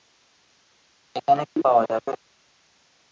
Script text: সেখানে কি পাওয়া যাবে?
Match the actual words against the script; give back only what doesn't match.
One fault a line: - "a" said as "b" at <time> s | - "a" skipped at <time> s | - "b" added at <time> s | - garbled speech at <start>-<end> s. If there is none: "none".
- "সেখানে" said as "এখানে" at 1.1 s